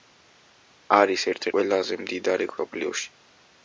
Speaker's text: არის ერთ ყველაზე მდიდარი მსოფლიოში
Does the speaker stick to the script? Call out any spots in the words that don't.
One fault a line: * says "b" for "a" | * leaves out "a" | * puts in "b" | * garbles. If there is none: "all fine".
all fine